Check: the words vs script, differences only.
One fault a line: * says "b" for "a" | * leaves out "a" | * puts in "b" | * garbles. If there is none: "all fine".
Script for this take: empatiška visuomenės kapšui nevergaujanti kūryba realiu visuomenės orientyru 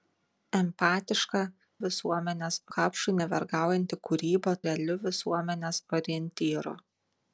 all fine